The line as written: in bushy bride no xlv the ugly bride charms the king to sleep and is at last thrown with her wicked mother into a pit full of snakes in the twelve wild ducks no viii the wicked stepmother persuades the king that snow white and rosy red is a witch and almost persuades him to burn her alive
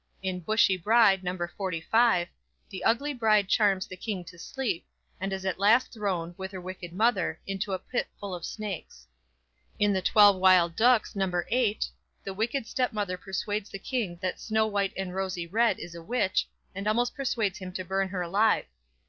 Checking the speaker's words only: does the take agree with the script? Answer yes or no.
yes